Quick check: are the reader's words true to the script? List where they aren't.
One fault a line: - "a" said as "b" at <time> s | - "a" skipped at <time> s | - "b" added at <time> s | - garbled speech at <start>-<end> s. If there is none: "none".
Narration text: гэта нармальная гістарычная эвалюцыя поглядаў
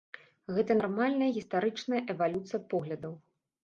none